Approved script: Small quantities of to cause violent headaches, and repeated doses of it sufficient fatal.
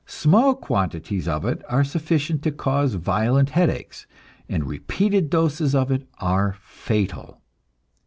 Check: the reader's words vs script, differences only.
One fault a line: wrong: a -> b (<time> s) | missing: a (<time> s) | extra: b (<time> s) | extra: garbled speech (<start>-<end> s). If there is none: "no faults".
extra: it are sufficient (1.4 s)
wrong: sufficient -> are (6.2 s)